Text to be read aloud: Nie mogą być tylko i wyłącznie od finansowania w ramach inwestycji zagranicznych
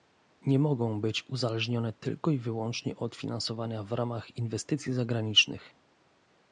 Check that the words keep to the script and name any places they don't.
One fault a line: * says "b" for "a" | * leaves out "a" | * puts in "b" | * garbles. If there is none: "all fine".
* puts in "uzależnione"